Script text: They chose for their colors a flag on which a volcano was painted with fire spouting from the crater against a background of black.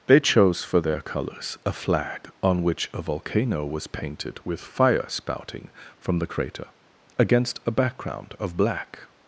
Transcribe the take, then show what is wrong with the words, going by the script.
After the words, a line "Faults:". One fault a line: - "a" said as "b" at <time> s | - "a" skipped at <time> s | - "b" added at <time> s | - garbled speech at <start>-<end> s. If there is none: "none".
They chose for their colors a flag on which a volcano was painted with fire spouting from the crater against a background of black.
Faults:
none